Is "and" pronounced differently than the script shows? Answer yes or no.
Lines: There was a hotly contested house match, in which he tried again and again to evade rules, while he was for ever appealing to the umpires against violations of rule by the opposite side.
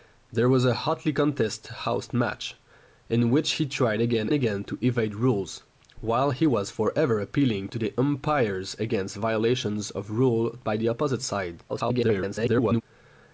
yes